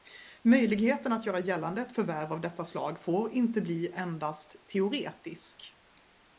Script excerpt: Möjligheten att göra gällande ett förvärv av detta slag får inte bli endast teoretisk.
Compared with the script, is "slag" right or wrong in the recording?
right